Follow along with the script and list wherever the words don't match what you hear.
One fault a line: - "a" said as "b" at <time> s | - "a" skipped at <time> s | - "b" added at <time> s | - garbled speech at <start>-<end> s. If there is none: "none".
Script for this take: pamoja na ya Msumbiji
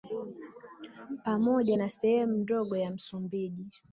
- "sehemu ndogo" added at 1.9 s